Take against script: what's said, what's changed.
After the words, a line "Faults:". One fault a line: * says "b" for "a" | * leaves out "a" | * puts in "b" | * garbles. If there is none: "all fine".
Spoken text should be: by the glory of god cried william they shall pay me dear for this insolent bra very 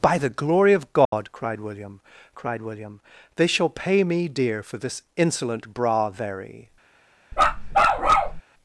by the glory of god cried william cried william they shall pay me dear for this insolent bra very
Faults:
* puts in "cried william"